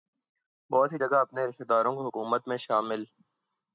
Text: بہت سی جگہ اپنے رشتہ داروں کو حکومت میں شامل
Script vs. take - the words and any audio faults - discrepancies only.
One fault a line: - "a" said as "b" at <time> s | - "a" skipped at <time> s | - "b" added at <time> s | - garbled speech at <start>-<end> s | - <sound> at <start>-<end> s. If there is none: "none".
none